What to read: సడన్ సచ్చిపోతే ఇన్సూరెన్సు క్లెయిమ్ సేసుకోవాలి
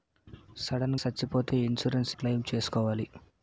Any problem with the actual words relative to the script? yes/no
no